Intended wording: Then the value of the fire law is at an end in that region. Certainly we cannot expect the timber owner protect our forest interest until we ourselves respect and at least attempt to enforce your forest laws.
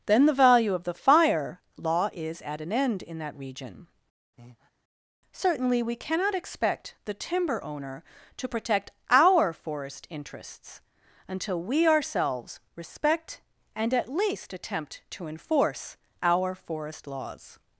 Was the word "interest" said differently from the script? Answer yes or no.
yes